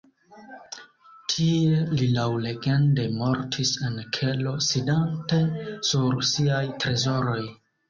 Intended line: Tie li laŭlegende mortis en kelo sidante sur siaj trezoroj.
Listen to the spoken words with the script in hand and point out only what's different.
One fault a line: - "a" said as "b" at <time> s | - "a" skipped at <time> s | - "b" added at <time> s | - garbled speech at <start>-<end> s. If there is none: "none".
none